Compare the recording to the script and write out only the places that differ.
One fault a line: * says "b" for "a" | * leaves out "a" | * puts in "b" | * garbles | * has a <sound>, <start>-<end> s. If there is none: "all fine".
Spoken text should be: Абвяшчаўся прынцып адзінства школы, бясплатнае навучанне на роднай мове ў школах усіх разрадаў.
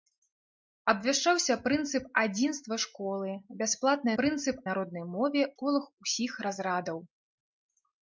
* says "прынцып" for "навучанне"
* leaves out "ў"